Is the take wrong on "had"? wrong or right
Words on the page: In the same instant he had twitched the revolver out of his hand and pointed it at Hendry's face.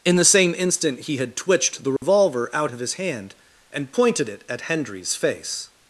right